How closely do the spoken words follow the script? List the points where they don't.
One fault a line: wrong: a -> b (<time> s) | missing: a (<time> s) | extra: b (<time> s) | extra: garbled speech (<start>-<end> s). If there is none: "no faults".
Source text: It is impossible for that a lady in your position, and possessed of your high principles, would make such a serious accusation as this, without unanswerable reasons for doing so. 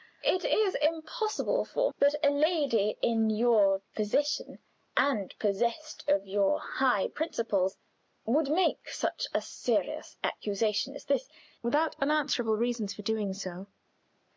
no faults